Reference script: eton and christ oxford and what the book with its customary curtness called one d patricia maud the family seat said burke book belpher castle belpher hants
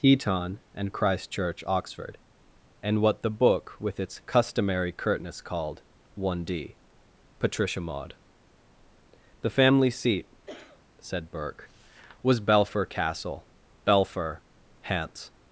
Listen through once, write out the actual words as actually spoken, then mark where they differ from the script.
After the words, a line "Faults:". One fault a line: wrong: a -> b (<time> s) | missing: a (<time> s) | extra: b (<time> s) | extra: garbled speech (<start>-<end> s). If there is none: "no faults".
eton and christ church oxford and what the book with its customary curtness called one d patricia maud the family seat said burke was belpher castle belpher hants
Faults:
extra: church (1.3 s)
wrong: book -> was (12.2 s)